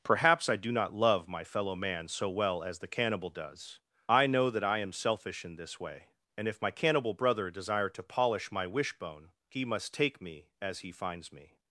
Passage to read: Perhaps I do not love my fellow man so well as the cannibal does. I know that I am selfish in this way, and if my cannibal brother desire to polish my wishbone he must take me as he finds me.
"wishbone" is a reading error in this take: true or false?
false